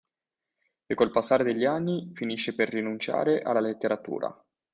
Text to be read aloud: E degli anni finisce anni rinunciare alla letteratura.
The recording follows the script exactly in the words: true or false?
false